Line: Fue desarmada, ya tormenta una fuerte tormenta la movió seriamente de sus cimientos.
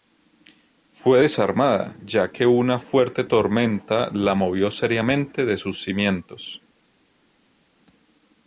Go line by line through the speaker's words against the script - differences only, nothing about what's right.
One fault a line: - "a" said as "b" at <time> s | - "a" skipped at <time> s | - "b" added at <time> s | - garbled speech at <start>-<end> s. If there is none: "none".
- "tormenta" said as "que" at 2.3 s